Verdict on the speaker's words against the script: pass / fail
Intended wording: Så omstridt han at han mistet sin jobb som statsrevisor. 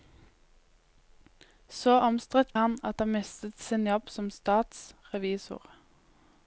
pass